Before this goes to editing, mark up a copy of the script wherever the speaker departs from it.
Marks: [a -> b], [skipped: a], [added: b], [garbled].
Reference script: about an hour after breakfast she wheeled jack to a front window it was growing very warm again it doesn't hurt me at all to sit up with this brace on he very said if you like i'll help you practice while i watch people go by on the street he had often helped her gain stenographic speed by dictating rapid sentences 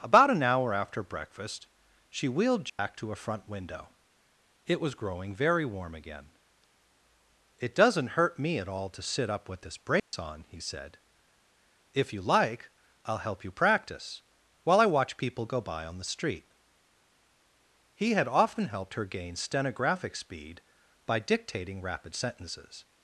about an hour after breakfast she wheeled jack to a front window it was growing very warm again it doesn't hurt me at all to sit up with this brace on he [skipped: very] said if you like i'll help you practice while i watch people go by on the street he had often helped her gain stenographic speed by dictating rapid sentences